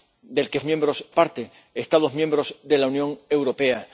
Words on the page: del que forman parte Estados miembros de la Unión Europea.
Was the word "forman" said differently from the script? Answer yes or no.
yes